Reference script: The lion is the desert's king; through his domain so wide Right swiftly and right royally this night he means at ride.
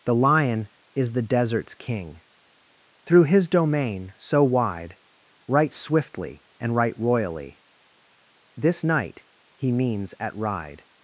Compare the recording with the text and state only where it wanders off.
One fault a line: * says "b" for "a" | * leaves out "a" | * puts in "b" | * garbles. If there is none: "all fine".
all fine